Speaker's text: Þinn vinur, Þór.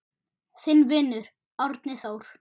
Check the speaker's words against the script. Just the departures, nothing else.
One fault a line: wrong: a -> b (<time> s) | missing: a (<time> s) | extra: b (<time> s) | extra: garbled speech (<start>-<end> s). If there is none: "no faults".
extra: Árni (1.7 s)